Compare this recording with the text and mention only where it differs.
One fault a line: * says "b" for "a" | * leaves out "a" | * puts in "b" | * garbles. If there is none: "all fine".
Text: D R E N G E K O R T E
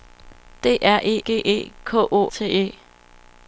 * leaves out "N"
* leaves out "R"